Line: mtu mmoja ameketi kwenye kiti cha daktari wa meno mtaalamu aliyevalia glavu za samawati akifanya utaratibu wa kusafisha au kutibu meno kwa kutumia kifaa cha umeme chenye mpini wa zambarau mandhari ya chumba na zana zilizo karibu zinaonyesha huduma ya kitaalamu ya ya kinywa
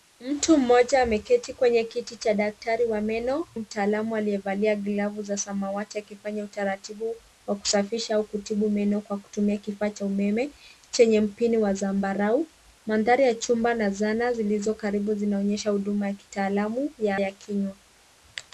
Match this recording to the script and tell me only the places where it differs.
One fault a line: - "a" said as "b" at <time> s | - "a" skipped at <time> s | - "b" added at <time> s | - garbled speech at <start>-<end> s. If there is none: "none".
none